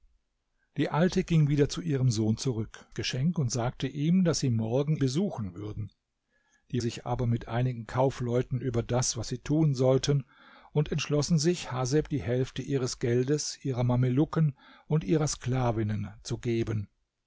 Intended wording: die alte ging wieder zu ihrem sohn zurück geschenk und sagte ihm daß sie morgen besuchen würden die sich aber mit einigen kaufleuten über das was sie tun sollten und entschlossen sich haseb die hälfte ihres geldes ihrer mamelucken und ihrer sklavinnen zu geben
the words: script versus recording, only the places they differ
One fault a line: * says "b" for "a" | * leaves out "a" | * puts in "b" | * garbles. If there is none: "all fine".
all fine